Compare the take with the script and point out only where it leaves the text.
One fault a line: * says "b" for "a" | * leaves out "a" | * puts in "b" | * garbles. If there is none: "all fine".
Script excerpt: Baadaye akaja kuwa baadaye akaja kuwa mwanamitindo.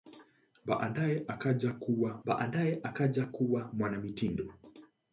all fine